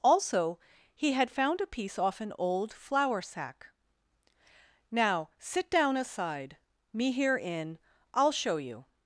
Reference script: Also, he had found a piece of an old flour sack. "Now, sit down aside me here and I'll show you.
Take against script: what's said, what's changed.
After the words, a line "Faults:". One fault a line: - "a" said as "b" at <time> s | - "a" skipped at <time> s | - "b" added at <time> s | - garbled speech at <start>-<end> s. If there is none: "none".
Also, he had found a piece off an old flour sack. "Now, sit down aside me here in I'll show you.
Faults:
- "of" said as "off" at 2.0 s
- "and" said as "in" at 7.4 s